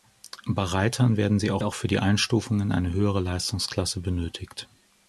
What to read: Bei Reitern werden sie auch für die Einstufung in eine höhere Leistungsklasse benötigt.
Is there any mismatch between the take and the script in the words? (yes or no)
yes